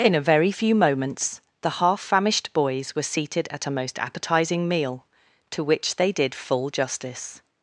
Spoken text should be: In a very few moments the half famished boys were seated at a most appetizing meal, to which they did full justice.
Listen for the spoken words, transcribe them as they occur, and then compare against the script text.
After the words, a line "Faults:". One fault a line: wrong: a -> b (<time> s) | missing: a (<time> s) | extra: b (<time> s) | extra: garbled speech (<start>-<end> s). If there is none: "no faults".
In a very few moments the half famished boys were seated at a most appetizing meal, to which they did full justice.
Faults:
no faults